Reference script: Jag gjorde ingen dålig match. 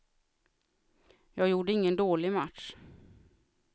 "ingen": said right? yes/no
yes